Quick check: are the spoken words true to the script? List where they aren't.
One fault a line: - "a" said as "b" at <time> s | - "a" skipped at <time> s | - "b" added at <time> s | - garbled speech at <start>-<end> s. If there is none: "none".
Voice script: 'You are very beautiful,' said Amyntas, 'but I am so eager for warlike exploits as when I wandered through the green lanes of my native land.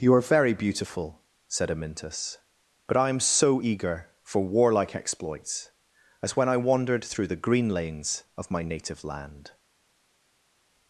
none